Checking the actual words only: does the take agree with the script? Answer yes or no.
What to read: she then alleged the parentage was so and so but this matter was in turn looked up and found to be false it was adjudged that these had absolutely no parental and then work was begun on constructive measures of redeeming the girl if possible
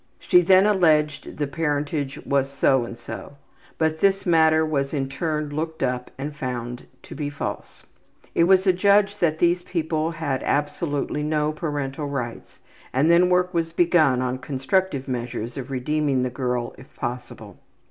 no